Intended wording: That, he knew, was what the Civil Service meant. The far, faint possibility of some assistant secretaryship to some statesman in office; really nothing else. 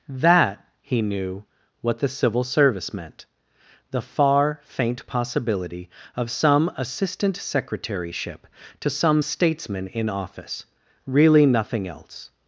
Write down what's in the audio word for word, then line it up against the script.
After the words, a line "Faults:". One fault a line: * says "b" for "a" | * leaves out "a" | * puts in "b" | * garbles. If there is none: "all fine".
That, he knew, what the Civil Service meant. The far, faint possibility of some assistant secretaryship to some statesman in office; really nothing else.
Faults:
* leaves out "was"